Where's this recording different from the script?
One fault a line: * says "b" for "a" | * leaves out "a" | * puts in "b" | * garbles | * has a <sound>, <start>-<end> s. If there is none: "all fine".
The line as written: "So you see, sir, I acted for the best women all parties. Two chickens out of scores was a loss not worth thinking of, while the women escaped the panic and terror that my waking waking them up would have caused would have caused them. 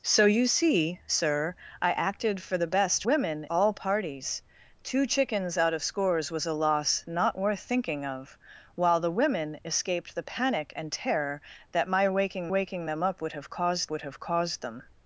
all fine